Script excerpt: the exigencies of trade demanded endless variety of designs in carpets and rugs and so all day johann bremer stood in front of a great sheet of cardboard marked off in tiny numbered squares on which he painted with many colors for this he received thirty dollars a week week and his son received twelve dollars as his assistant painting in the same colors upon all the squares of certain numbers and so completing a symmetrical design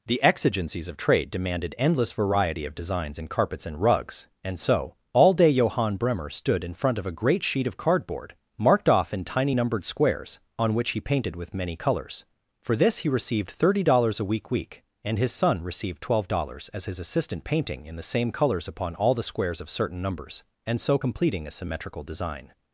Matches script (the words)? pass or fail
pass